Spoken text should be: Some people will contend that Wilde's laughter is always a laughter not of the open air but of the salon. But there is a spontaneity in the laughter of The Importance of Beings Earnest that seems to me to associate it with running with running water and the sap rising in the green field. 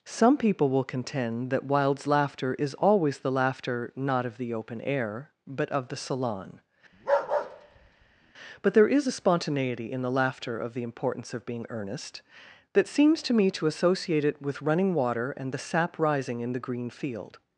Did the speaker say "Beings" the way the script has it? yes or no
no